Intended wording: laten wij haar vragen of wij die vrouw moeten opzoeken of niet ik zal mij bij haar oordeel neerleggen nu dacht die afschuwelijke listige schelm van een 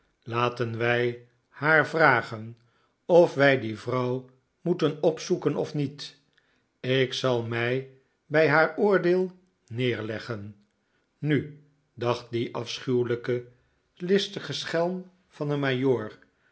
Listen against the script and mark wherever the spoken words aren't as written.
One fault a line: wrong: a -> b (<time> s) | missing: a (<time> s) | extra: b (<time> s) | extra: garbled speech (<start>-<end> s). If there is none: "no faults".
no faults